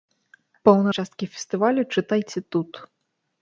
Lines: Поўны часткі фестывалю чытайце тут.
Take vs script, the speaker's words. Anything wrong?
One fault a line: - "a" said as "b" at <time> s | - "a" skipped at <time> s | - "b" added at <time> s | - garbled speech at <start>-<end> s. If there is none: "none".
none